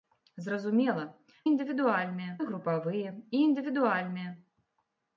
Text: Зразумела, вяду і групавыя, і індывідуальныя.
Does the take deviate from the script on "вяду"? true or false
true